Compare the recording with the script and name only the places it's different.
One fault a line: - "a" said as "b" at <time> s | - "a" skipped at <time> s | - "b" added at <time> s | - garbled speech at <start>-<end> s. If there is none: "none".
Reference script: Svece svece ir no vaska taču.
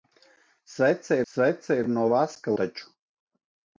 none